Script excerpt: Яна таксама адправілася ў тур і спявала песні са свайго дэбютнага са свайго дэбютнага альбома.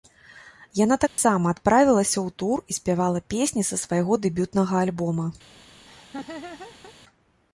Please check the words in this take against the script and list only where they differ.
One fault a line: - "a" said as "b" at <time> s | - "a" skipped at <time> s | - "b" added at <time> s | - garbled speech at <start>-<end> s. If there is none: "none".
- "са свайго дэбютнага" skipped at 4.8 s